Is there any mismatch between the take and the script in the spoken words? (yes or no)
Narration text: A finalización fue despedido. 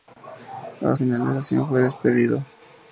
no